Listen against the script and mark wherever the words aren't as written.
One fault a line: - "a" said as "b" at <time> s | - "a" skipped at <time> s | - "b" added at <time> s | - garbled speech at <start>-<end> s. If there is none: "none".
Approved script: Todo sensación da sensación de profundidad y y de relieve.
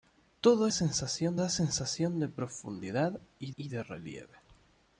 none